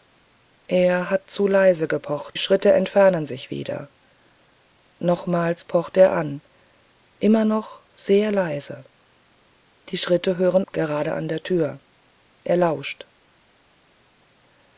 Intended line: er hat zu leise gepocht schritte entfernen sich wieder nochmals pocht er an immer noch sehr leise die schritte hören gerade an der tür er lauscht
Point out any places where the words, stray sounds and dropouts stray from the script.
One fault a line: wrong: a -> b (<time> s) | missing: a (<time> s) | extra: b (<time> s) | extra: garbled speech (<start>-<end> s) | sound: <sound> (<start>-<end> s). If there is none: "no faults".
no faults